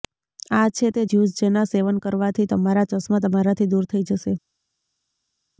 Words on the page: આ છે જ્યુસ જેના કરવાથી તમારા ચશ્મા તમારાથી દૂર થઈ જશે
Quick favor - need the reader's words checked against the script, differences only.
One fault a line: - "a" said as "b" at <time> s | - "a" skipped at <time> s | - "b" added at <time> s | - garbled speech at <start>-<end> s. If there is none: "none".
- "તે" added at 0.9 s
- "સેવન" added at 1.7 s